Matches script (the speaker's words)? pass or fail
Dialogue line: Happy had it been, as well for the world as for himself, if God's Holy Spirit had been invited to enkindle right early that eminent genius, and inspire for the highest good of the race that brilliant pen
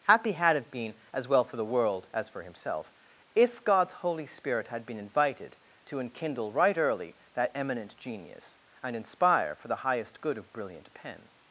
fail